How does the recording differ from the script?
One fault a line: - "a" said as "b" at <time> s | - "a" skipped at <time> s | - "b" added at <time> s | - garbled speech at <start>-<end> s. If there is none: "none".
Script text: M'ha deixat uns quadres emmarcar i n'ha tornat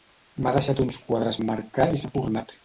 none